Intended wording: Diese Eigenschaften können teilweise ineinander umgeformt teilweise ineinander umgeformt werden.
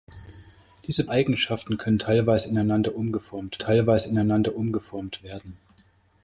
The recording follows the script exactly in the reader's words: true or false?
true